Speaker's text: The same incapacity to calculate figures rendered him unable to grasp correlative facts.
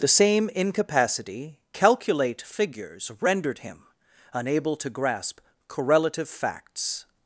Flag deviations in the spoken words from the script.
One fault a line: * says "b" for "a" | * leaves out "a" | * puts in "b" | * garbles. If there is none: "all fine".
* leaves out "to"